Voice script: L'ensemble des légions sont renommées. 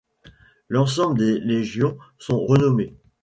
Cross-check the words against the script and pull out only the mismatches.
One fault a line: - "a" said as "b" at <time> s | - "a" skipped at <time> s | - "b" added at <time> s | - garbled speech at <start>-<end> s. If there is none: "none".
none